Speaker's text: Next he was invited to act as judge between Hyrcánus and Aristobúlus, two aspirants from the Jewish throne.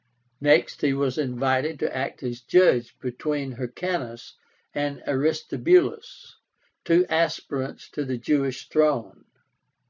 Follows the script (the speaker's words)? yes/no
no